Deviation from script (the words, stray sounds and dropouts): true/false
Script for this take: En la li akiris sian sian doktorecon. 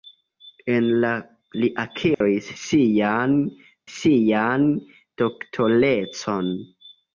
true